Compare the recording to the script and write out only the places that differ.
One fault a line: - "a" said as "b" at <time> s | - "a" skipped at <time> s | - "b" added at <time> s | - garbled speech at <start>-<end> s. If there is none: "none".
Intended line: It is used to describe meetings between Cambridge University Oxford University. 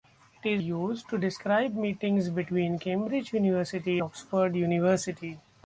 none